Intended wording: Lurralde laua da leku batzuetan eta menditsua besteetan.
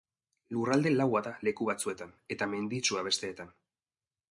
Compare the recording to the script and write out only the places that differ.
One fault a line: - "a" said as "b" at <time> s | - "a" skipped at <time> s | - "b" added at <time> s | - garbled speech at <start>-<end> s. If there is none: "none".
none